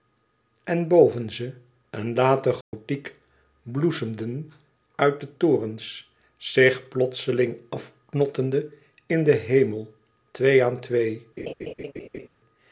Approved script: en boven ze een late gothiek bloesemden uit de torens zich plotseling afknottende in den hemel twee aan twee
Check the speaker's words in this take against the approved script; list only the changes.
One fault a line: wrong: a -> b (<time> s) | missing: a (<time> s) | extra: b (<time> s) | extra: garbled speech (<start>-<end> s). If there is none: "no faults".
no faults